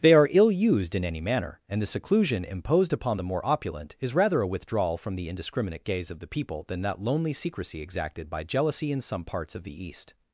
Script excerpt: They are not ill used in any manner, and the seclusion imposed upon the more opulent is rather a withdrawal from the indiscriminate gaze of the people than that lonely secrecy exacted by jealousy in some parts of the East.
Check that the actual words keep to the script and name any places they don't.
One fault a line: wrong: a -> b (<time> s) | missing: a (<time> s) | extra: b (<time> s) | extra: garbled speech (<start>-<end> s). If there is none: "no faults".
missing: not (0.3 s)